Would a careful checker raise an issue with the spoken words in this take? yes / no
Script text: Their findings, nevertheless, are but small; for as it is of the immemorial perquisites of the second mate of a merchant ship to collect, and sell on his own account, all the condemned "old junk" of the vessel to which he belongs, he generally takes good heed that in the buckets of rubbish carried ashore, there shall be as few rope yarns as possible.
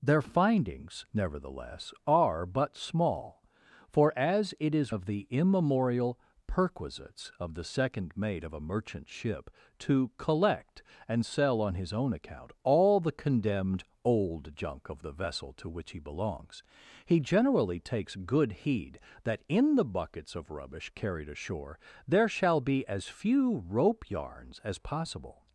no